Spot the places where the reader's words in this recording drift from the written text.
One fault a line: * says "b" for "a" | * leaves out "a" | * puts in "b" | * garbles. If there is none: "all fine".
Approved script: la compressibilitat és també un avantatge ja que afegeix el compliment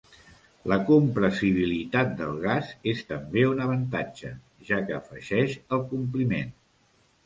* puts in "del gas"